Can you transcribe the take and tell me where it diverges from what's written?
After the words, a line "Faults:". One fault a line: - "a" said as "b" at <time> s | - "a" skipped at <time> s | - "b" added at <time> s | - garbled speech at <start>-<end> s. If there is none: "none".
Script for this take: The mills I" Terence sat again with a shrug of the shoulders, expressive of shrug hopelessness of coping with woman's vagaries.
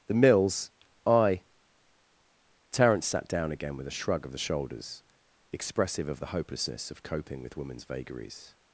The mills I" Terence sat down again with a shrug of the shoulders, expressive of the hopelessness of coping with woman's vagaries.
Faults:
- "down" added at 3.3 s
- "shrug" said as "the" at 6.2 s